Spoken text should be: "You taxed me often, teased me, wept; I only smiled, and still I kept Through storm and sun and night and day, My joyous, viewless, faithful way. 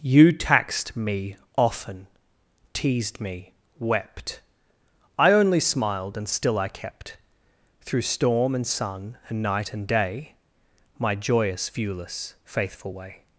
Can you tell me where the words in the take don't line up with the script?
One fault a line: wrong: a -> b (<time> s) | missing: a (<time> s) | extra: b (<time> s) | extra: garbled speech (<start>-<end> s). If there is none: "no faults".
no faults